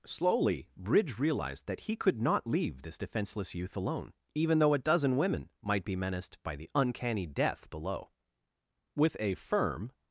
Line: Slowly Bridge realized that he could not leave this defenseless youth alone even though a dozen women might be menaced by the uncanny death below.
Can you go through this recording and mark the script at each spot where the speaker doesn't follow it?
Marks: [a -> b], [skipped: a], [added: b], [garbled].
Slowly Bridge realized that he could not leave this defenseless youth alone even though a dozen women might be menaced by the uncanny death below. [added: With a firm]